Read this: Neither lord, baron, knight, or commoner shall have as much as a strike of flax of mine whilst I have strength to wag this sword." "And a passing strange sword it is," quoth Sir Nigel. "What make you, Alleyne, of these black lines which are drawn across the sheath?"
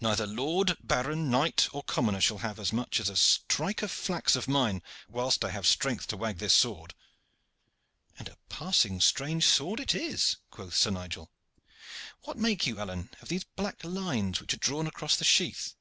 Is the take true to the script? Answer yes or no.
yes